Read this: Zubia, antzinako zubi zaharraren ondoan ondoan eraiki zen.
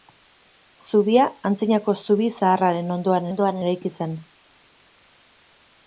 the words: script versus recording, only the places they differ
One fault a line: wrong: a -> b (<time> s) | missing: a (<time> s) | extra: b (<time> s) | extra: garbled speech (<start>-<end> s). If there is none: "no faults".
no faults